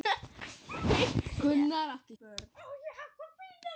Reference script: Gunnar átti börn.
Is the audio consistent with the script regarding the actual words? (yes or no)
yes